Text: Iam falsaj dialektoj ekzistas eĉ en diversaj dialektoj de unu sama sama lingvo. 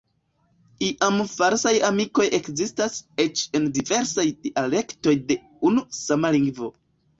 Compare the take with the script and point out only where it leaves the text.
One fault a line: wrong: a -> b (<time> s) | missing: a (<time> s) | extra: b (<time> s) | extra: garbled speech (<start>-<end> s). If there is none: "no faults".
wrong: dialektoj -> amikoj (1.9 s)
missing: sama (6.4 s)